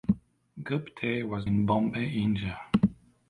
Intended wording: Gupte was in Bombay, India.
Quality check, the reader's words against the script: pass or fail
pass